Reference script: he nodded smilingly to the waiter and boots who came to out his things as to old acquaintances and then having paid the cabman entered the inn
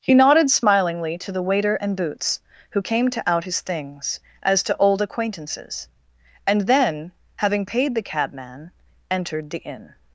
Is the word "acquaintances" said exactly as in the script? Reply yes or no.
yes